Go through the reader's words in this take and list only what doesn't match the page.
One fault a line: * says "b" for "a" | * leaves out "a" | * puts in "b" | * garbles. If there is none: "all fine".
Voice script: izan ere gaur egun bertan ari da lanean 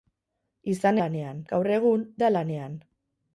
* says "lanean" for "ere"
* leaves out "bertan ari"